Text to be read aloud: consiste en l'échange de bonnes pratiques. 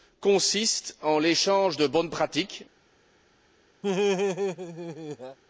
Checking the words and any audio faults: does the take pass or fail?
fail